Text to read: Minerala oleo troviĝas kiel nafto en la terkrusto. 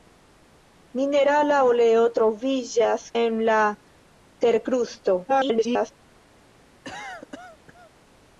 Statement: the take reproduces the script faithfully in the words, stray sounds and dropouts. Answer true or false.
false